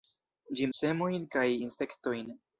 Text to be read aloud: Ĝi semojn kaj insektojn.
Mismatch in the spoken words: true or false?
false